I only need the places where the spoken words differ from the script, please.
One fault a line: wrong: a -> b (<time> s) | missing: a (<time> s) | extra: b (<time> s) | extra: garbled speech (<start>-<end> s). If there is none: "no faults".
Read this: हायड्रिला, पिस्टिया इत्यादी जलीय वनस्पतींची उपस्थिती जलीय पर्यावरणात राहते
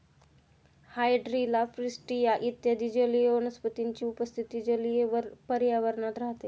no faults